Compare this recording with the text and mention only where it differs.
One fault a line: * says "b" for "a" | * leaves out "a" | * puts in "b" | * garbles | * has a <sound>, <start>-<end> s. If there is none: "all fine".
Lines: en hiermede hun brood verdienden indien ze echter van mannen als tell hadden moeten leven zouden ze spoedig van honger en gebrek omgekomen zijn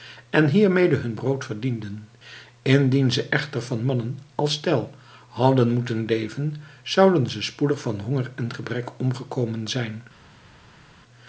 all fine